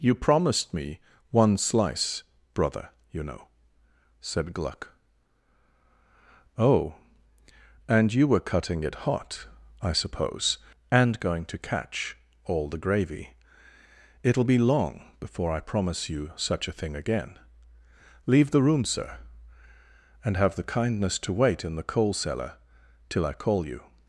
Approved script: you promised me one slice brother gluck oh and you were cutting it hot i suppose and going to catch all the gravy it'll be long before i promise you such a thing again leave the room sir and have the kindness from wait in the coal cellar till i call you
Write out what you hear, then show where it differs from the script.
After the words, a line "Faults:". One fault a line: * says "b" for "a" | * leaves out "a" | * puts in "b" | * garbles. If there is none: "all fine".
you promised me one slice brother you know said gluck oh and you were cutting it hot i suppose and going to catch all the gravy it'll be long before i promise you such a thing again leave the room sir and have the kindness to wait in the coal cellar till i call you
Faults:
* puts in "you know said"
* says "to" for "from"